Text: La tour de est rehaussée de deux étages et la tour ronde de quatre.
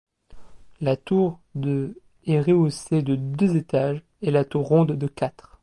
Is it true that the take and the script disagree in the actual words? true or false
false